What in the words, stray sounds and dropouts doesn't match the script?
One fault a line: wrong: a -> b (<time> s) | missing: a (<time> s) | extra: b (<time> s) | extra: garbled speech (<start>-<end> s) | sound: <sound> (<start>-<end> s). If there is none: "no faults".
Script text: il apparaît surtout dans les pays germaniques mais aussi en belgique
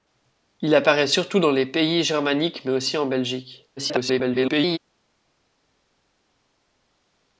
extra: garbled speech (3.8-4.8 s)